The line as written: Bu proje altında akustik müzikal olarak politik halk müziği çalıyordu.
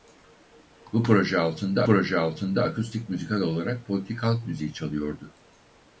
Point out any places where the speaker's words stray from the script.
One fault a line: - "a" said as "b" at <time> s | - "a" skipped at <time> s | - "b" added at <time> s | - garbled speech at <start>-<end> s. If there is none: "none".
- "proje altında" added at 1.8 s